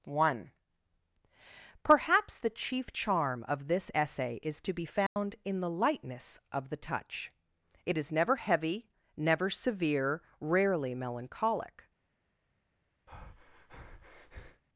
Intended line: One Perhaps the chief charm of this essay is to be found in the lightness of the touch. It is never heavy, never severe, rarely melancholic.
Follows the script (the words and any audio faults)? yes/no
no